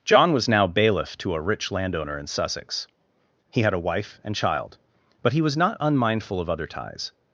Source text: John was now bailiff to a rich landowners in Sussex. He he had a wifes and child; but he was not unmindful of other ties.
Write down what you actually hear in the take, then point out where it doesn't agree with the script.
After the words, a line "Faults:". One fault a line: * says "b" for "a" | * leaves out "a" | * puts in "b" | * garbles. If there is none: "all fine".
John was now bailiff to a rich landowner in Sussex. He had a wife and child; but he was not unmindful of other ties.
Faults:
* says "landowner" for "landowners"
* leaves out "he"
* says "wife" for "wifes"